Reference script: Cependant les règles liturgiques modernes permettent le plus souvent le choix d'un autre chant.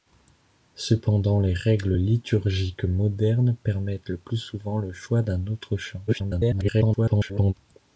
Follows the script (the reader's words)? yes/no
no